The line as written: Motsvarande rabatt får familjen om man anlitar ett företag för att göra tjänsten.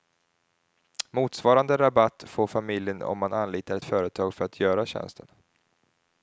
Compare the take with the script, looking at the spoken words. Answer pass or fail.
pass